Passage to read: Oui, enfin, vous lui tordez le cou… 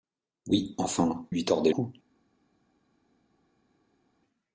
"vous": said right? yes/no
no